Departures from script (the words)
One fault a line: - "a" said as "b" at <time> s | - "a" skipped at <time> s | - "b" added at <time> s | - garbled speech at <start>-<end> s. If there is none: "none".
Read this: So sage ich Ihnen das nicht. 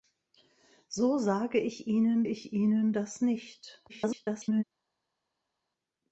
- "ich Ihnen" added at 2.2 s
- garbled speech at 3.9-4.6 s